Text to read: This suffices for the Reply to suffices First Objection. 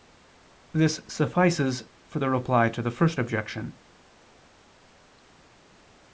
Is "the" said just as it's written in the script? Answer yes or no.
yes